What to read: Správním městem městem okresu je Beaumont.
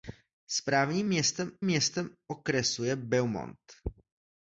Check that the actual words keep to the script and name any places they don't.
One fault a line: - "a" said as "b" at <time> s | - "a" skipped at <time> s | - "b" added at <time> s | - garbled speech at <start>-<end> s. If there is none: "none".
none